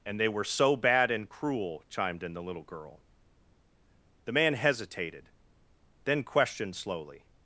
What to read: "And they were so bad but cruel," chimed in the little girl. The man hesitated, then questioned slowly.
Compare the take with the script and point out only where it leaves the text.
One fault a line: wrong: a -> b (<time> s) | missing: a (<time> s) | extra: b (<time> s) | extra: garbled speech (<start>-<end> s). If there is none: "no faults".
wrong: but -> and (1.1 s)